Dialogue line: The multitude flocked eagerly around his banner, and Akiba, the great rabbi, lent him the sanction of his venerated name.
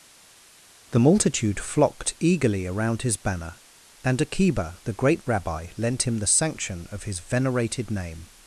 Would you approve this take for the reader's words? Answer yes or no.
yes